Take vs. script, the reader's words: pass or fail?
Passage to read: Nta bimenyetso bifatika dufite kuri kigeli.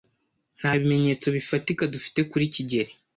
pass